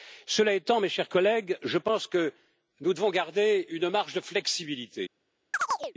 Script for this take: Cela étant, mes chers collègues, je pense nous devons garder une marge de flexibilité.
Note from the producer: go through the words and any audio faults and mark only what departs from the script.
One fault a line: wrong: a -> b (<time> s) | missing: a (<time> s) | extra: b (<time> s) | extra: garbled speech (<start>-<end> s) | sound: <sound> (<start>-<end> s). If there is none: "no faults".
extra: que (2.1 s)
sound: chirp (5.5-5.9 s)